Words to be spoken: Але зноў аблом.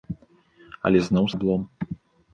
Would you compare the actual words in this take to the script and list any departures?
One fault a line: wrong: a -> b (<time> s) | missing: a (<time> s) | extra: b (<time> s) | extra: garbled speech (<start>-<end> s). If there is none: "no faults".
no faults